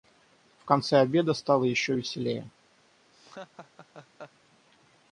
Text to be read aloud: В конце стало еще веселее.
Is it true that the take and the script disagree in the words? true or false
true